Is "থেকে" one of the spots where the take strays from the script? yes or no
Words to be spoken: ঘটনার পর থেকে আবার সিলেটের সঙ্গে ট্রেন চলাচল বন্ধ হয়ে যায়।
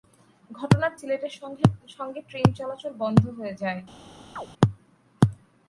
yes